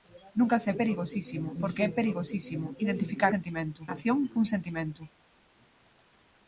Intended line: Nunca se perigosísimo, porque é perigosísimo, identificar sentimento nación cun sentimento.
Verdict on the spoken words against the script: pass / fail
pass